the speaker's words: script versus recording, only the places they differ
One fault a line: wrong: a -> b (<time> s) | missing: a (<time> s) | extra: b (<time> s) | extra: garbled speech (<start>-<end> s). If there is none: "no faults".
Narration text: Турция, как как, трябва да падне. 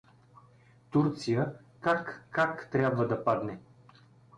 no faults